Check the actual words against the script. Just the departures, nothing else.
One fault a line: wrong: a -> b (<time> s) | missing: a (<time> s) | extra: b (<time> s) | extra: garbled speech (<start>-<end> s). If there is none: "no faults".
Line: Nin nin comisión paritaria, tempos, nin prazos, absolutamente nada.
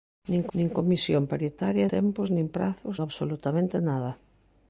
no faults